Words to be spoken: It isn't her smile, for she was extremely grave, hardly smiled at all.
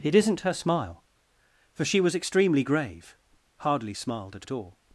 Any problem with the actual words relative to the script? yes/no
yes